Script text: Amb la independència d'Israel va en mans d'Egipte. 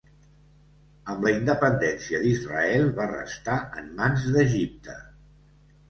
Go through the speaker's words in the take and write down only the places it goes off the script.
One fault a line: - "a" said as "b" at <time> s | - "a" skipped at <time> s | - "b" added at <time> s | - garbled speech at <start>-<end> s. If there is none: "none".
- "restar" added at 3.2 s